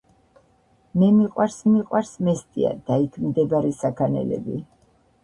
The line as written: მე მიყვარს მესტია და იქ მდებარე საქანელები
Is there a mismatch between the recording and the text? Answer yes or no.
yes